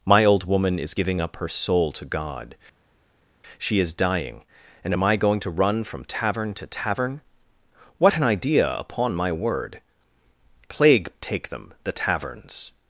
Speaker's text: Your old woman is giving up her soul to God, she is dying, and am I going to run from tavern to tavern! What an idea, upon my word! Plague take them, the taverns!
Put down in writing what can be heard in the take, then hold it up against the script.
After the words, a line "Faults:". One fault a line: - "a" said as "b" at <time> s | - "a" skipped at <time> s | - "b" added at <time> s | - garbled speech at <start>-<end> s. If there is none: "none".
My old woman is giving up her soul to God, she is dying, and am I going to run from tavern to tavern! What an idea, upon my word! Plague take them, the taverns!
Faults:
- "Your" said as "My" at 0.1 s